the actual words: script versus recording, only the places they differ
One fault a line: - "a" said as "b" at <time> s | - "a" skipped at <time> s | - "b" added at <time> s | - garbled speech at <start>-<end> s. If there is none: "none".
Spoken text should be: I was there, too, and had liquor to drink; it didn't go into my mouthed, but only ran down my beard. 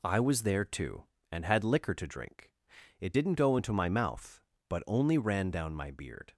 - "mouthed" said as "mouth" at 3.9 s